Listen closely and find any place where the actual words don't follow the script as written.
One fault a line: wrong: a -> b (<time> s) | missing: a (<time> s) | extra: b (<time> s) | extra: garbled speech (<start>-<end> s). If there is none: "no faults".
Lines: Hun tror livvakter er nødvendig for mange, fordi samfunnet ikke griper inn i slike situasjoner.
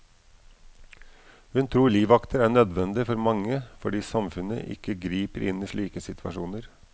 no faults